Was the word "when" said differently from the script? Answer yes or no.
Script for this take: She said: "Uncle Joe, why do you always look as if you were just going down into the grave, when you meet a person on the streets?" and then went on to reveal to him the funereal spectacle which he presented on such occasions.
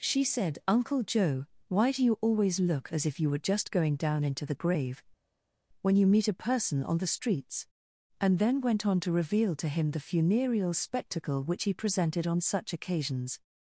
no